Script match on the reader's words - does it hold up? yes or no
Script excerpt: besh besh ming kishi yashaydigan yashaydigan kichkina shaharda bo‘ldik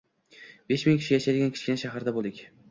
no